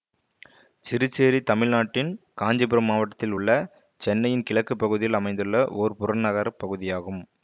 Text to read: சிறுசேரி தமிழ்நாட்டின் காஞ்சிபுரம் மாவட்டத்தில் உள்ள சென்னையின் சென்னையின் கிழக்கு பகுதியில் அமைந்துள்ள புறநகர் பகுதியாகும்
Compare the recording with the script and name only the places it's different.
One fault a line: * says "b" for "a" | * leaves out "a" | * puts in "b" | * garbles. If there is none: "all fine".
* leaves out "சென்னையின்"
* puts in "ஓர்"